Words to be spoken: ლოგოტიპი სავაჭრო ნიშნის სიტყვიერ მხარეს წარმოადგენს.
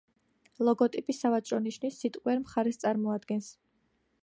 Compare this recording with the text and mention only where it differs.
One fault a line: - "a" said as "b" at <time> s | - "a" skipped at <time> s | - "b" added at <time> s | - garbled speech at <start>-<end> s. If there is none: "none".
none